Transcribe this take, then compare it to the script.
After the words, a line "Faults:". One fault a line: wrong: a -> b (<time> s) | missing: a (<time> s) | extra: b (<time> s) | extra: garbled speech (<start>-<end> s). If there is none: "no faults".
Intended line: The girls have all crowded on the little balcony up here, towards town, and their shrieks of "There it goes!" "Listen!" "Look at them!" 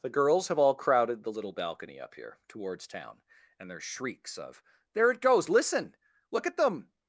The girls have all crowded the little balcony up here, towards town, and their shrieks of "There it goes!" "Listen!" "Look at them!"
Faults:
missing: on (1.2 s)